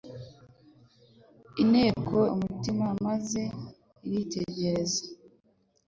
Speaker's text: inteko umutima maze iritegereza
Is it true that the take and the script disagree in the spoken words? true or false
false